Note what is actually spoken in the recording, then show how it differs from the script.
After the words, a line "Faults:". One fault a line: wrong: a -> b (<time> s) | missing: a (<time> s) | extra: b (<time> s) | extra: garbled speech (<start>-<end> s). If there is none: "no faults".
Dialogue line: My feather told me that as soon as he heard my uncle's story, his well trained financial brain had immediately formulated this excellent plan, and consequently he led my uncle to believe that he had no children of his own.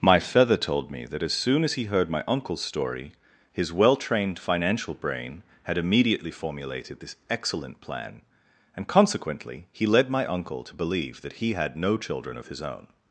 My feather told me that as soon as he heard my uncle's story, his well trained financial brain had immediately formulated this excellent plan, and consequently he led my uncle to believe that he had no children of his own.
Faults:
no faults